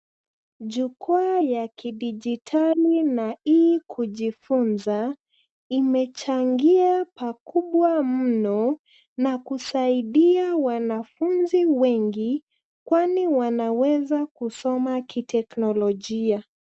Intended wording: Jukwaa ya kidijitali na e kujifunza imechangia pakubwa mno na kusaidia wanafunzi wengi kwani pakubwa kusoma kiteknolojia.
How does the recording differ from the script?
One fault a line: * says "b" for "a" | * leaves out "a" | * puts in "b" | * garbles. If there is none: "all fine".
* says "wanaweza" for "pakubwa"